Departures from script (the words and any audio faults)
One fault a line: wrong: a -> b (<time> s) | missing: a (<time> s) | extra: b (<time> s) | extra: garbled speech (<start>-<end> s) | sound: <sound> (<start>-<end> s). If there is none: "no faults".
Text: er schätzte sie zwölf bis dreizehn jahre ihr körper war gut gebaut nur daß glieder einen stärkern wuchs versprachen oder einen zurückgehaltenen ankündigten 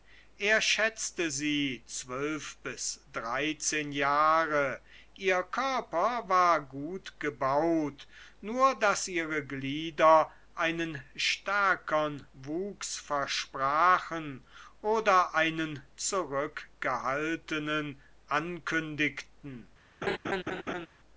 extra: ihre (9.1 s)
sound: laugh (20.0-20.9 s)